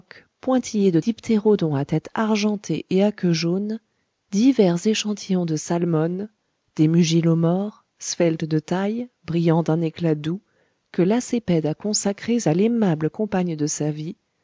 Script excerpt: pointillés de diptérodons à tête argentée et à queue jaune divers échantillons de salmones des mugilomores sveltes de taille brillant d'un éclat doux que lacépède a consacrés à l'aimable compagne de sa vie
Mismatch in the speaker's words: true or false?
false